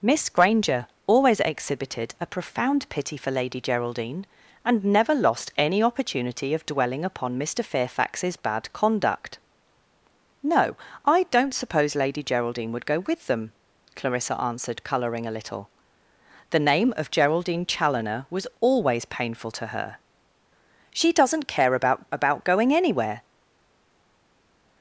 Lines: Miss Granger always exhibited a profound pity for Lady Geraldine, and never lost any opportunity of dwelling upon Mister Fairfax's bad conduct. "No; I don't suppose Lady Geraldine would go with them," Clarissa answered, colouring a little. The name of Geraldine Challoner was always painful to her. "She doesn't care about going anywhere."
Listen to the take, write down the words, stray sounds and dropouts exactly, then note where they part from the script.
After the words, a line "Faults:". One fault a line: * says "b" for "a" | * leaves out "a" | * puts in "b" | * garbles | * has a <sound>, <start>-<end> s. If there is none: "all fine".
Miss Granger always exhibited a profound pity for Lady Geraldine, and never lost any opportunity of dwelling upon Mister Fairfax's bad conduct. "No; I don't suppose Lady Geraldine would go with them," Clarissa answered, colouring a little. The name of Geraldine Challoner was always painful to her. "She doesn't care about about going anywhere."
Faults:
* puts in "about"